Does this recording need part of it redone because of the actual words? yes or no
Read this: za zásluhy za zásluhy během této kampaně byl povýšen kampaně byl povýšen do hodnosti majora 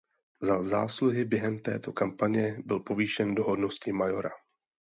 yes